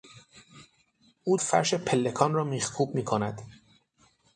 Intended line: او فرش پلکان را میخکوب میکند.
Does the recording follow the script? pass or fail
pass